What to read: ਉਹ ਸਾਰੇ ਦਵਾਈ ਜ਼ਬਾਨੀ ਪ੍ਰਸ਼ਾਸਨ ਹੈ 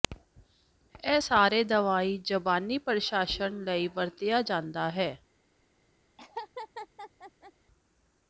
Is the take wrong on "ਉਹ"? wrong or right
wrong